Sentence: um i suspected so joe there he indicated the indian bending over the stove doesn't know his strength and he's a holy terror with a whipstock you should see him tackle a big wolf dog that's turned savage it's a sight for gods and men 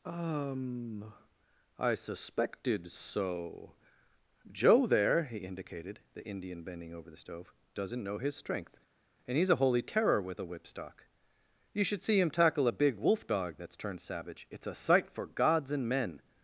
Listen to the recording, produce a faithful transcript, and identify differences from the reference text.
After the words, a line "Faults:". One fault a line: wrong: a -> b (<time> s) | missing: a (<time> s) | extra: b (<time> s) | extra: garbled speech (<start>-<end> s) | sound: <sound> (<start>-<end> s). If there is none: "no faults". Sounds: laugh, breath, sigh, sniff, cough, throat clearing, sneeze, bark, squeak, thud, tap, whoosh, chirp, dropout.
um i suspected so joe there he indicated the indian bending over the stove doesn't know his strength and he's a holy terror with a whipstock you should see him tackle a big wolf dog that's turned savage it's a sight for gods and men
Faults:
no faults